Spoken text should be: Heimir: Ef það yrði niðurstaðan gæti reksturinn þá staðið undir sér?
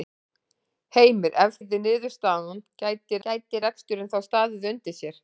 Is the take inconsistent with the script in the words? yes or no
yes